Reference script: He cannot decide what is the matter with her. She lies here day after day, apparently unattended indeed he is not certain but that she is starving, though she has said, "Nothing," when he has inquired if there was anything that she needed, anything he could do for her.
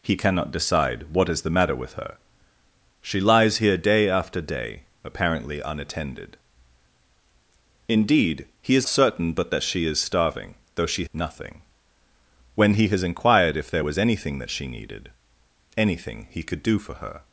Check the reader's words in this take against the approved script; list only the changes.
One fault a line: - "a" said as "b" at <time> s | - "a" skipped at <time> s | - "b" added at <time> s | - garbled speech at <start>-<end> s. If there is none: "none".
- "not" skipped at 8.9 s
- "has said" skipped at 11.1 s